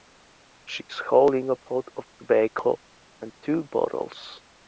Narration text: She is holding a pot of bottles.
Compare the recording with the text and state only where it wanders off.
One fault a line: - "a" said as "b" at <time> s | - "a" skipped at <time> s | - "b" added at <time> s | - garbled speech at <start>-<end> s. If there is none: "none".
- "tobacco and two" added at 2.2 s